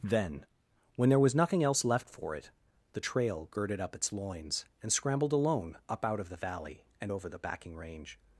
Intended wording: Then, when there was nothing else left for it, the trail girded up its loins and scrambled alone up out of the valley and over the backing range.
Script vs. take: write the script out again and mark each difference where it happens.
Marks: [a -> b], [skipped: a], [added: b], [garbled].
Then, when there was nothing else left for it, the trail girded up its loins and scrambled alone up out of the valley and over the backing range.